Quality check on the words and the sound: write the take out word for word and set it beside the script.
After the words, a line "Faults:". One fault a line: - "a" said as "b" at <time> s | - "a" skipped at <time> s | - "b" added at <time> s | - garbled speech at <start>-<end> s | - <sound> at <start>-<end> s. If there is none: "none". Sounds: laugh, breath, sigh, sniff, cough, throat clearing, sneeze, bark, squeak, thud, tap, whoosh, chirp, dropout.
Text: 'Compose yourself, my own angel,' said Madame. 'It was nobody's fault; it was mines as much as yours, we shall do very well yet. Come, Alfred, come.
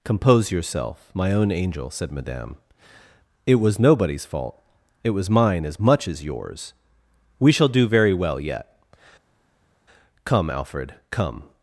'Compose yourself, my own angel,' said Madame. 'It was nobody's fault; it was mine as much as yours, we shall do very well yet. Come, Alfred, come.
Faults:
- "mines" said as "mine" at 5.3 s